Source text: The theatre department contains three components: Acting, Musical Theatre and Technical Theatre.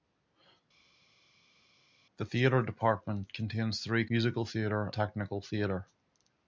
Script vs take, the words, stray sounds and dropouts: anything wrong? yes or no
yes